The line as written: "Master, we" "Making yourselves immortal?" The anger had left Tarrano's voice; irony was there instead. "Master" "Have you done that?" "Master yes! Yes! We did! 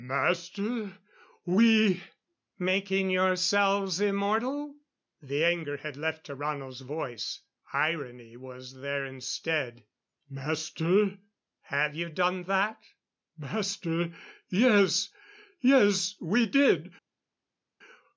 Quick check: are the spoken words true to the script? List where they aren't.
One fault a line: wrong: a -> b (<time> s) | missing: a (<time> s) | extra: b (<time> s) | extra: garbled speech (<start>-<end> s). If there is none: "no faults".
no faults